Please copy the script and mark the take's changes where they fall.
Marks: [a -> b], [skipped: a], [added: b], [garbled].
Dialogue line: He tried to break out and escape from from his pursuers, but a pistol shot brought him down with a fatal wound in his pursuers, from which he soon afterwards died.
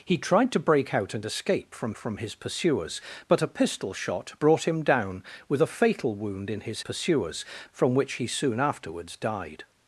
He tried to break out and escape from from his pursuers, but a pistol shot brought him down with a fatal wound in his pursuers, from which he soon afterwards died.